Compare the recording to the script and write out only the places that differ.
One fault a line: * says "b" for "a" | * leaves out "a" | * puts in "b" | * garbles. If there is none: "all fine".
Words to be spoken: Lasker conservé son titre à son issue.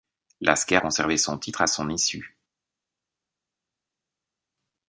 all fine